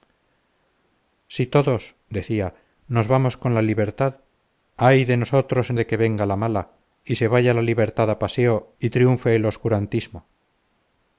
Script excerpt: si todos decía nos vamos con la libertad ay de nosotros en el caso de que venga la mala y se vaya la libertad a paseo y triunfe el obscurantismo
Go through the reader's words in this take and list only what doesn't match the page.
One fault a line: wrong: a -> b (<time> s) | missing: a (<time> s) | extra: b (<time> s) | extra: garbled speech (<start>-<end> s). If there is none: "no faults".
missing: el caso (5.8 s)